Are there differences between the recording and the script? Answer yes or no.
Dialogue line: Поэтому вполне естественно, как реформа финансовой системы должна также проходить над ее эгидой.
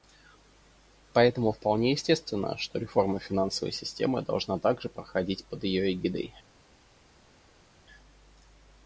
yes